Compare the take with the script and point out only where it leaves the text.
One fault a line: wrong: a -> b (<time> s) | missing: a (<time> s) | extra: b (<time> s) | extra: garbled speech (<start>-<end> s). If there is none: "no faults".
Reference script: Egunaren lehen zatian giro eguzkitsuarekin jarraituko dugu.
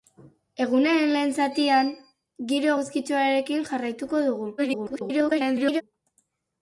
extra: garbled speech (4.6-5.8 s)